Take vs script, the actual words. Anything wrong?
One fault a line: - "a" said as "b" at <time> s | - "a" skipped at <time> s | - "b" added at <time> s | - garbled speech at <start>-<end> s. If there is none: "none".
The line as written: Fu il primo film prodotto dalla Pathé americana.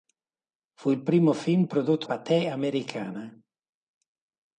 - "dalla" skipped at 2.1 s